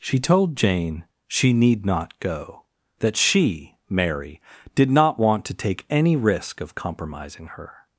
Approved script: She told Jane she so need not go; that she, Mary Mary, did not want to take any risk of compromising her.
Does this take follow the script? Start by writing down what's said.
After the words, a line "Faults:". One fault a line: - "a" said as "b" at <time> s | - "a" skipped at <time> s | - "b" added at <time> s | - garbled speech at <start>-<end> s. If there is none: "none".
She told Jane she need not go; that she, Mary, did not want to take any risk of compromising her.
Faults:
- "so" skipped at 1.5 s
- "Mary" skipped at 4.4 s